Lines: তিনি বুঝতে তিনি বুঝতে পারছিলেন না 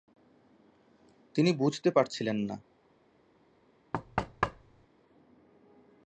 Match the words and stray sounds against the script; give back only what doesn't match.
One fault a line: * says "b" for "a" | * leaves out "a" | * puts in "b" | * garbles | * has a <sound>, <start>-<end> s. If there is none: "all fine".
* leaves out "তিনি বুঝতে"
* has a thud, 3.9-4.9 s